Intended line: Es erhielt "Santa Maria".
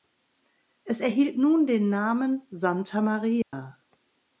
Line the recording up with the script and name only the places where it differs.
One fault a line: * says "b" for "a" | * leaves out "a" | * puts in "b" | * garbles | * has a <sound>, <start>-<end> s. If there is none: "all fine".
* puts in "nun den Namen"
* has a dropout, 3.4-3.5 s